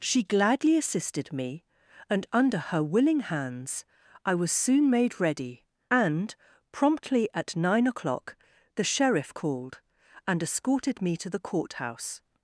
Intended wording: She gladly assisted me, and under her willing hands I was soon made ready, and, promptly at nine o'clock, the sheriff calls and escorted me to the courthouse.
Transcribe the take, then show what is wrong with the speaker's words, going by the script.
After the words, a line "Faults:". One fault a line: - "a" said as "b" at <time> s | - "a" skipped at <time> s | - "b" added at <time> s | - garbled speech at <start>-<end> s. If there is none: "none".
She gladly assisted me, and under her willing hands I was soon made ready, and, promptly at nine o'clock, the sheriff called and escorted me to the courthouse.
Faults:
- "calls" said as "called" at 9.3 s